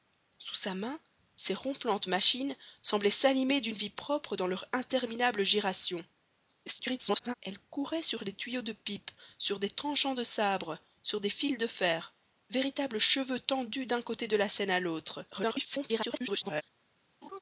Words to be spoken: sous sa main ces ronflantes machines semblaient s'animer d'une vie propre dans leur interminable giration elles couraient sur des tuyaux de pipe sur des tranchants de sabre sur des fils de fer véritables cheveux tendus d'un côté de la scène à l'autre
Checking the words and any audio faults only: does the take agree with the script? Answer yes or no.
no